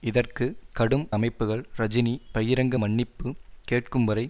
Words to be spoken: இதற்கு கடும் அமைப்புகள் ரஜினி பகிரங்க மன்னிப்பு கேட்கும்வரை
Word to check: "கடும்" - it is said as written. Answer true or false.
true